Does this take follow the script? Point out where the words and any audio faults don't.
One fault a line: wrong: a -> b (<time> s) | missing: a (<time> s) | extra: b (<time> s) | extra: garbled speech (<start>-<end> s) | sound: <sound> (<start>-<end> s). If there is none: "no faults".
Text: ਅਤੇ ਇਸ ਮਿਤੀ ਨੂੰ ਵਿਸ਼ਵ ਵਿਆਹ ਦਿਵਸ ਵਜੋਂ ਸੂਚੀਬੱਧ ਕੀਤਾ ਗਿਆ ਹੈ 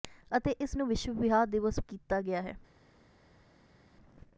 missing: ਮਿਤੀ (0.8 s)
missing: ਵਜੋਂ ਸੂਚੀਬੱਧ (1.8 s)